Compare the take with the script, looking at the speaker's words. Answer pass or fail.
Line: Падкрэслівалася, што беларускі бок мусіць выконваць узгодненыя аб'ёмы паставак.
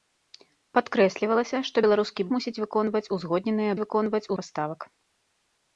fail